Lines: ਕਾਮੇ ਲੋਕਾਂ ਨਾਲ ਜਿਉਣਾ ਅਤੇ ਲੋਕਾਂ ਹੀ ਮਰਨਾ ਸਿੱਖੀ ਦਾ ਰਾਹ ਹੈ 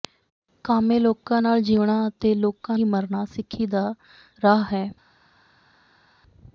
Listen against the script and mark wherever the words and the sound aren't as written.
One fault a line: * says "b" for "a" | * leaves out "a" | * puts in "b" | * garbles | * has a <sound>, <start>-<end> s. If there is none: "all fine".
all fine